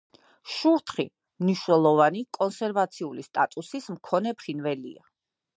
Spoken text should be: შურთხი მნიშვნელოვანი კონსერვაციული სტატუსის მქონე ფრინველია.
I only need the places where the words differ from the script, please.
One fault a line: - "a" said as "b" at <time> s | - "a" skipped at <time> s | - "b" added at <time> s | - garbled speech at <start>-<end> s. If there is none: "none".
none